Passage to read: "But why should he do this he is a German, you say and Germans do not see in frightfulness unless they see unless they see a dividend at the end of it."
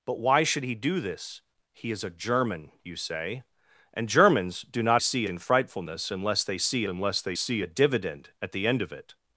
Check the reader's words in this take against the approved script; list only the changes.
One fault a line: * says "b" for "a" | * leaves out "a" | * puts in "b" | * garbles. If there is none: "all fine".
all fine